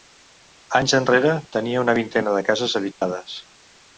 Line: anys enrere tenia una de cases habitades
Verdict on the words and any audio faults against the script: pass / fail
fail